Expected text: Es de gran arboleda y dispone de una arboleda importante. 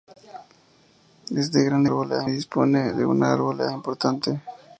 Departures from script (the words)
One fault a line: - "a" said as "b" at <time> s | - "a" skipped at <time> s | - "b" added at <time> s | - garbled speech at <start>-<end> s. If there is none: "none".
none